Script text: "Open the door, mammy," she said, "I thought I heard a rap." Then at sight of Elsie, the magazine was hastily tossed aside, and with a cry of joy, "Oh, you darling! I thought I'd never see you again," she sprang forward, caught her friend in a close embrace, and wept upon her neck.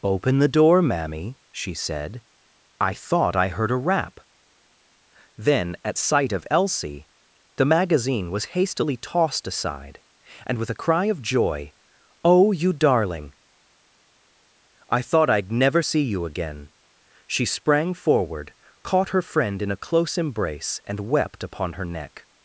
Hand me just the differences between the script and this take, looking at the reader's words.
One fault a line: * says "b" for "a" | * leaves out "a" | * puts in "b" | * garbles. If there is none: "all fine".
all fine